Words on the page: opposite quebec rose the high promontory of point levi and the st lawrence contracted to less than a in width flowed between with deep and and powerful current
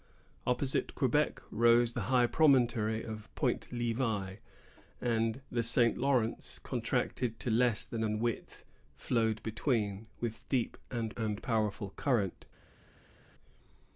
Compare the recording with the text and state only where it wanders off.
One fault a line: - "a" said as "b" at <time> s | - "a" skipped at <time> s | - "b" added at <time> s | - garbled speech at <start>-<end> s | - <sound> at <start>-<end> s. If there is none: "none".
none